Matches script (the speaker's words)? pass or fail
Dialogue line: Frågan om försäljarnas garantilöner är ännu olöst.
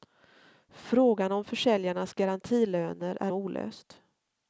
fail